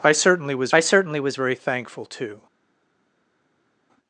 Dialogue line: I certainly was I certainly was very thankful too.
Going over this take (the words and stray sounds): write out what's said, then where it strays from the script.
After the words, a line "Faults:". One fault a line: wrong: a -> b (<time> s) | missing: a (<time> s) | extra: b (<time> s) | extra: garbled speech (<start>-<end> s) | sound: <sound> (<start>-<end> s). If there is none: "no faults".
I certainly was I certainly was very thankful too.
Faults:
no faults